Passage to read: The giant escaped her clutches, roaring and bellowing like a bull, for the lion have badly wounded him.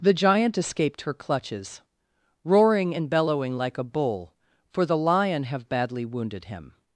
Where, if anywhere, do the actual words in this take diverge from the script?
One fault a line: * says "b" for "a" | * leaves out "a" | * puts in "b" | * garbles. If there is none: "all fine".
all fine